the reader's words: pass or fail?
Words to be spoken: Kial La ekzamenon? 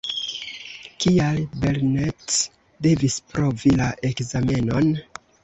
fail